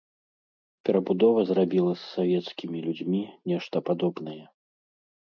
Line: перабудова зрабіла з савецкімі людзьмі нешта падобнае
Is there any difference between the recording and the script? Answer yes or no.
no